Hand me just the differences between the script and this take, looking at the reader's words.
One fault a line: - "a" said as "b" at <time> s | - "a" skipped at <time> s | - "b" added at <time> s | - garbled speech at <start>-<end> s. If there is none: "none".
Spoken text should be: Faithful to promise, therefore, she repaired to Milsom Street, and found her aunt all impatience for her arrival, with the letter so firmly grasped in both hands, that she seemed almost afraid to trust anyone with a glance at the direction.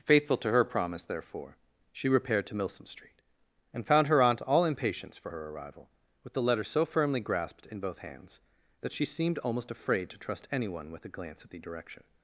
- "her" added at 0.5 s